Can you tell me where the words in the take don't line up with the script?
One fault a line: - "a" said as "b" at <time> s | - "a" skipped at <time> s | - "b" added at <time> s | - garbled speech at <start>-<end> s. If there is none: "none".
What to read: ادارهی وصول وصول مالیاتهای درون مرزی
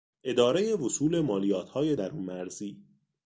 - "وصول" skipped at 1.2 s